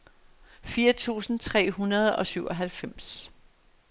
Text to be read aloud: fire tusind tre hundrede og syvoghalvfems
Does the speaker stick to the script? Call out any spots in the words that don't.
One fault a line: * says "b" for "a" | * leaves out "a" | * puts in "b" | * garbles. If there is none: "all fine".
all fine